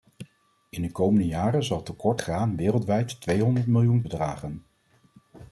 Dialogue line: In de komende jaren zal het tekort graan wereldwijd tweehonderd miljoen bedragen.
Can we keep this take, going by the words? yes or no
yes